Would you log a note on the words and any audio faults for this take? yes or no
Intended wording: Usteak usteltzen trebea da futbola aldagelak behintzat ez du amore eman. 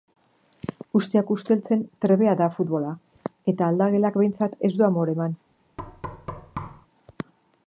yes